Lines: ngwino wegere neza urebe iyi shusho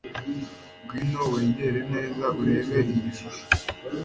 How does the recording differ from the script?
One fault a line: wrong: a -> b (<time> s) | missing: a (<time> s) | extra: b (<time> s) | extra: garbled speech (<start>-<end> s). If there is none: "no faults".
no faults